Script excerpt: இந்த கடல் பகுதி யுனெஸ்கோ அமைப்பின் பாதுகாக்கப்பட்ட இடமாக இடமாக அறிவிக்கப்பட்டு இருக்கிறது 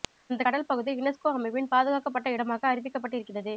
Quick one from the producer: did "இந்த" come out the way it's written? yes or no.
no